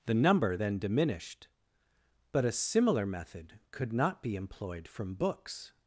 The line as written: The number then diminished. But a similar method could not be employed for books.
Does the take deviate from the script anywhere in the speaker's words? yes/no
yes